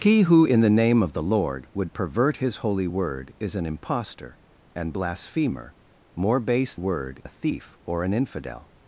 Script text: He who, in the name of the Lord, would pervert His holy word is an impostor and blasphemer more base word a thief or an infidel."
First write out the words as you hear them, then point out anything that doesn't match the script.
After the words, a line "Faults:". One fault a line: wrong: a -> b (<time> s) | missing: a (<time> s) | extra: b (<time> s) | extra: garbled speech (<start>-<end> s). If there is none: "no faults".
He who, in the name of the Lord, would pervert His holy word is an impostor and blasphemer more base word a thief or an infidel."
Faults:
no faults